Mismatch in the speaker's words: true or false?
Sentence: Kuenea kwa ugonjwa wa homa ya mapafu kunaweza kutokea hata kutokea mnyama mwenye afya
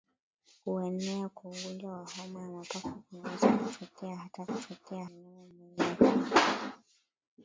false